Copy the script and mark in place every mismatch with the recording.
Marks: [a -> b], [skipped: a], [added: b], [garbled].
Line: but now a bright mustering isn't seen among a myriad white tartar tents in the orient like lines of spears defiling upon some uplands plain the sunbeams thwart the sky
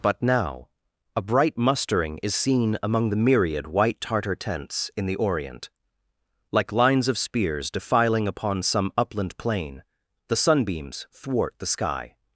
but now a bright mustering [isn't -> is] seen among [a -> the] myriad white tartar tents in the orient like lines of spears defiling upon some [uplands -> upland] plain the sunbeams thwart the sky